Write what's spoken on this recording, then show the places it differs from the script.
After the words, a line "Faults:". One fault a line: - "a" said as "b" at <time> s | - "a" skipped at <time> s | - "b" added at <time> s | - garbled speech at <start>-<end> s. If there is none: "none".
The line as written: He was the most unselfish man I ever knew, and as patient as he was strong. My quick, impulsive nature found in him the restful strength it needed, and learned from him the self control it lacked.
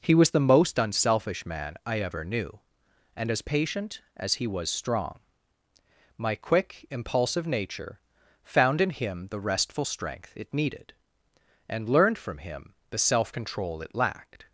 He was the most unselfish man I ever knew, and as patient as he was strong. My quick, impulsive nature found in him the restful strength it needed, and learned from him the self control it lacked.
Faults:
none